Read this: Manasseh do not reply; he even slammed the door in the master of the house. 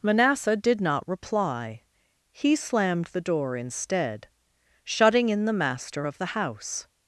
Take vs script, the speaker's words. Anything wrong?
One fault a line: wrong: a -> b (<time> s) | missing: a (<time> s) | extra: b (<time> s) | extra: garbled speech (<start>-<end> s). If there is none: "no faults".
wrong: do -> did (0.6 s)
missing: even (2.5 s)
extra: instead shutting (3.6 s)